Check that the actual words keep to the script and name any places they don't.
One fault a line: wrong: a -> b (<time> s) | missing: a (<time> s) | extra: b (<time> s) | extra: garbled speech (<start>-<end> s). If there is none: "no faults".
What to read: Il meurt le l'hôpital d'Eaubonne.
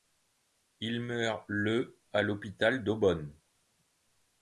extra: à (2.1 s)